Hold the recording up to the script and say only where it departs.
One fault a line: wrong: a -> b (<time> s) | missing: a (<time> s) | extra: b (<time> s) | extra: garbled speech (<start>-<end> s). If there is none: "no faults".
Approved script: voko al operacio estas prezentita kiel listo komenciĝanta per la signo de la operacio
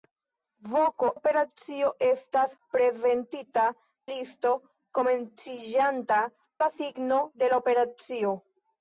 missing: al (1.1 s)
missing: kiel (3.6 s)
missing: per (6.2 s)